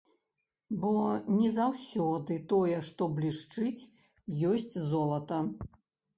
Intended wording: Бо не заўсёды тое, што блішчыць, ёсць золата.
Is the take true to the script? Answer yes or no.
yes